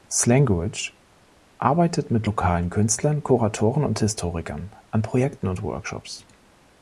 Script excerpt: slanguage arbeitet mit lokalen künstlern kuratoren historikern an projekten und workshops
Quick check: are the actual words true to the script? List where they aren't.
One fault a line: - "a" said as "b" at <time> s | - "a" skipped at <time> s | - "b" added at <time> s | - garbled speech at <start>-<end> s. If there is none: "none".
- "und" added at 3.8 s